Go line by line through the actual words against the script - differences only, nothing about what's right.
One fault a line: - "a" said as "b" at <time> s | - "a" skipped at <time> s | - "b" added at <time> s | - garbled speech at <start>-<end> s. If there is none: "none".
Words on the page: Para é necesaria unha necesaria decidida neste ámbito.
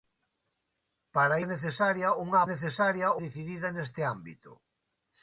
none